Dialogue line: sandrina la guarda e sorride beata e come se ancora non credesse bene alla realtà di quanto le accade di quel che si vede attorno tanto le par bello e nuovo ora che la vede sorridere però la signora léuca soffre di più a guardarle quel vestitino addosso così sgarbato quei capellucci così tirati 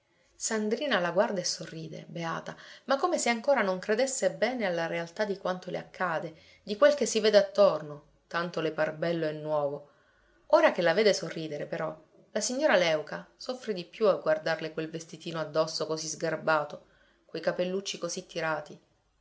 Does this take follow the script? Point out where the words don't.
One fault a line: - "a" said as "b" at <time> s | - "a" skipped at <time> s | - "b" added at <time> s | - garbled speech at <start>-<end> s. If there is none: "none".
- "e" said as "ma" at 2.9 s